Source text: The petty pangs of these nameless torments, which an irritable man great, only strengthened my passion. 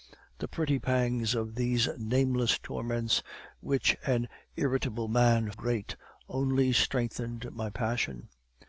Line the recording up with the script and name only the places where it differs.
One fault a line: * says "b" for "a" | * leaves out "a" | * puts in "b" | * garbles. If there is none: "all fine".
all fine